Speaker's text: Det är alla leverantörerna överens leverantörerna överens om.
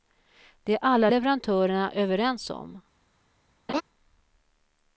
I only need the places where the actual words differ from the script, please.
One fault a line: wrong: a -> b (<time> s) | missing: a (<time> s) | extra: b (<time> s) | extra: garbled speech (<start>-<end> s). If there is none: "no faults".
missing: leverantörerna överens (2.5 s)